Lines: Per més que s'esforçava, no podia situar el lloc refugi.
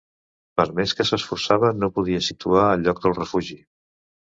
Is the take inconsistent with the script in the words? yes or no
yes